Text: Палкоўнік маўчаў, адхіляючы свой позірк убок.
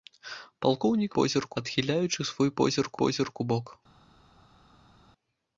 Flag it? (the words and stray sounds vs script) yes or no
yes